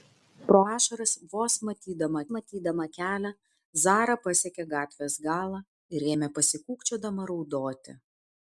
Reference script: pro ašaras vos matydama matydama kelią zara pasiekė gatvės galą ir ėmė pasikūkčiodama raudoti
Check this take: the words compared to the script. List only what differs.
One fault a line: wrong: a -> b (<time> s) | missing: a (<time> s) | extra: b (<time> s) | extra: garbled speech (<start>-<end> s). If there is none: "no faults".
no faults